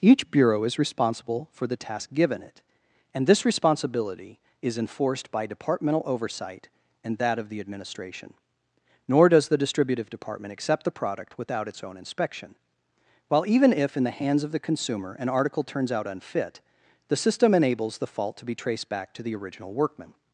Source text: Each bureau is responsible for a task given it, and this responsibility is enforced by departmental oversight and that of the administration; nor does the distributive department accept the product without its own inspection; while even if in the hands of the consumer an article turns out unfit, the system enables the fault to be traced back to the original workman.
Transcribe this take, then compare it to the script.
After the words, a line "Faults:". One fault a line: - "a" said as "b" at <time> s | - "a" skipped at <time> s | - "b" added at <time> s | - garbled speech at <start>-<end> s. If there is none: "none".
Each bureau is responsible for the task given it, and this responsibility is enforced by departmental oversight and that of the administration; nor does the distributive department accept the product without its own inspection; while even if in the hands of the consumer an article turns out unfit, the system enables the fault to be traced back to the original workman.
Faults:
- "a" said as "the" at 1.7 s